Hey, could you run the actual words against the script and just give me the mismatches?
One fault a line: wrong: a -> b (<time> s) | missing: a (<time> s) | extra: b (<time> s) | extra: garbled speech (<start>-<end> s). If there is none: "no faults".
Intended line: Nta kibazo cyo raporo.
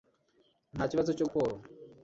no faults